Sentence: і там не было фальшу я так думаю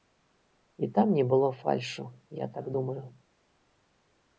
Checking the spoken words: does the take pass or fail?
pass